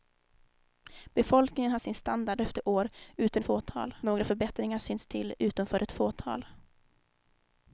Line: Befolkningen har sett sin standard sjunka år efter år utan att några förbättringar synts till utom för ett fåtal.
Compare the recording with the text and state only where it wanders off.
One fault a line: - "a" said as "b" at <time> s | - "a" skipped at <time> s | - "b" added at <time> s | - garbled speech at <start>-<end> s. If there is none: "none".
- "sett" skipped at 1.8 s
- "sjunka år" skipped at 2.4 s
- "att" said as "fåtal" at 3.4 s